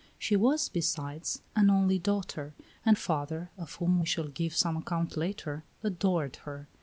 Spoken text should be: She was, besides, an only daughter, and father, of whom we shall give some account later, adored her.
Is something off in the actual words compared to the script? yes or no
no